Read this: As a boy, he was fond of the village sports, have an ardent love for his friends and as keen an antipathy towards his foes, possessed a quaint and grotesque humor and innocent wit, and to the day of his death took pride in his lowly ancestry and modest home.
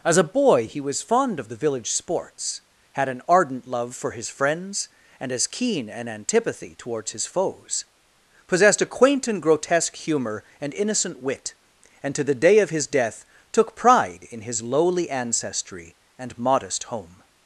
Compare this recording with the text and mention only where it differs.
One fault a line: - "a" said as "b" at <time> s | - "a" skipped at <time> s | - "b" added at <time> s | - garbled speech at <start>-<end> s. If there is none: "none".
- "have" said as "had" at 2.9 s